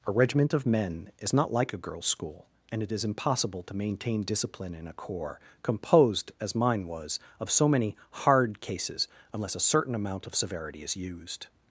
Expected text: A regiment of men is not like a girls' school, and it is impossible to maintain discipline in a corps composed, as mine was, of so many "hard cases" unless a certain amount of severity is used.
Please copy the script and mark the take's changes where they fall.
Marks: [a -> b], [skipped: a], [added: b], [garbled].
A regiment of men is not like a girls' school, and it is impossible to maintain discipline in a corps composed, as mine was, of so many "hard cases" unless a certain amount of severity is used.